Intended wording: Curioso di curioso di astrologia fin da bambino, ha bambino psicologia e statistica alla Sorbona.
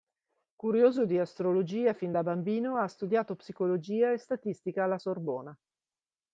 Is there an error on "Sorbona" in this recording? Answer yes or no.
no